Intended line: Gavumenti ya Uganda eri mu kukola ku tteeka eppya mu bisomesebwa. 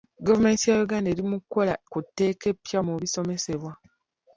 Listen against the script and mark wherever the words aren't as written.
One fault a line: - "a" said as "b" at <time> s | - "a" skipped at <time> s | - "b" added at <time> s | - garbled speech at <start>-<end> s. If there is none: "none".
none